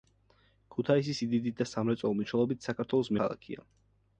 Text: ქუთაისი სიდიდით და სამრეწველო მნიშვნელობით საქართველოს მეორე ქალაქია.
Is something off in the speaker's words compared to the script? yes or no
yes